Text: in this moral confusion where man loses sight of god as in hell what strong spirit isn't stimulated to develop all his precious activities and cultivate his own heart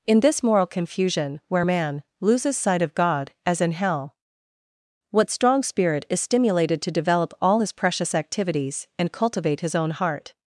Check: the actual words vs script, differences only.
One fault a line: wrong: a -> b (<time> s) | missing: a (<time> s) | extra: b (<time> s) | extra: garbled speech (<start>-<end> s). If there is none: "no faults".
wrong: isn't -> is (6.1 s)